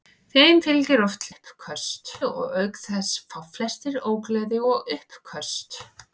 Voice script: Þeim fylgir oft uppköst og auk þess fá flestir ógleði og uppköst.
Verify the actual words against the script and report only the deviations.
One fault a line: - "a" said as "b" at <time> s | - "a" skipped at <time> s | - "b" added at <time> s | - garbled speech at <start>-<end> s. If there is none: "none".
none